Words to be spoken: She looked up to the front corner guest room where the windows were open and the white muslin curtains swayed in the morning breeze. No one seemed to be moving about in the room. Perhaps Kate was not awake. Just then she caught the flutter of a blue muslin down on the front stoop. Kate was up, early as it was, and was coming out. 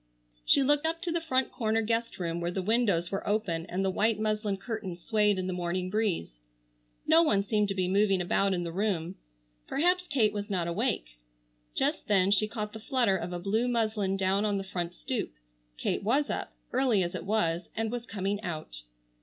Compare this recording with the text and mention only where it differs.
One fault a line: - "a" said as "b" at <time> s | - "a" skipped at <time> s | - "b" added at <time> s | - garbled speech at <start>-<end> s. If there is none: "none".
none